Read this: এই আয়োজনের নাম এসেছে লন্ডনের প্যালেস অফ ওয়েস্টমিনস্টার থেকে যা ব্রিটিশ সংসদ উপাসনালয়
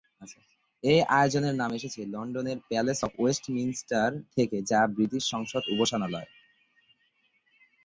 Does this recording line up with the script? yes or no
yes